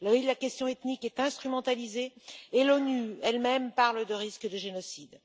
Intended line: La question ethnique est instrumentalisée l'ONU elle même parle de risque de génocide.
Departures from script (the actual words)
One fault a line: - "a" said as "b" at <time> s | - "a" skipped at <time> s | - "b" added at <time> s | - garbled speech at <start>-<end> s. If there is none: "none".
- "et" added at 2.5 s